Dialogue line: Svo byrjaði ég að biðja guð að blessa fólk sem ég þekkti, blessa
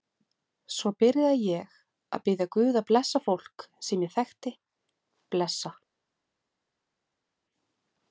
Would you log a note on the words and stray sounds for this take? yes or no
no